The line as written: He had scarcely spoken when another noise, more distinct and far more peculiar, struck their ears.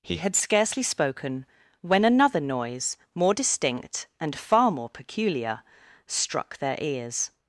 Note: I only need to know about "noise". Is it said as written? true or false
true